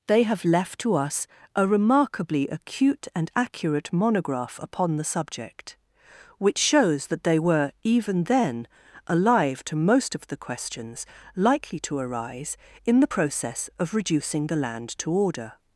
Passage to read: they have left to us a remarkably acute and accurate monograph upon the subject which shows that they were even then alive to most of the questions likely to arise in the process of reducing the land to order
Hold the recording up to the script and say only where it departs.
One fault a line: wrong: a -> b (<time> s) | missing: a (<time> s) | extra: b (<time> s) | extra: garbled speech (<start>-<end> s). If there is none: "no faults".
no faults